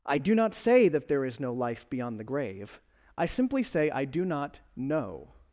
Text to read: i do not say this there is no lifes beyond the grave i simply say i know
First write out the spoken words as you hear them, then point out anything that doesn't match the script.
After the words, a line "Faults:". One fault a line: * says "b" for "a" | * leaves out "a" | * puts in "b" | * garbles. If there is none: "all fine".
i do not say that there is no life beyond the grave i simply say i do not know
Faults:
* says "that" for "this"
* says "life" for "lifes"
* puts in "do not"